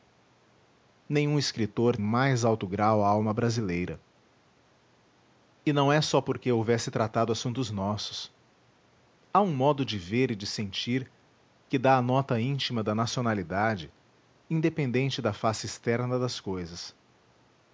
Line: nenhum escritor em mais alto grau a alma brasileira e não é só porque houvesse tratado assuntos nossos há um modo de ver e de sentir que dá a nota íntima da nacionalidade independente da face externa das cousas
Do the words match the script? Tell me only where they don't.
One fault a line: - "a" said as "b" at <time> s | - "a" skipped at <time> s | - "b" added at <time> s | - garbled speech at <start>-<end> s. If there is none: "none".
none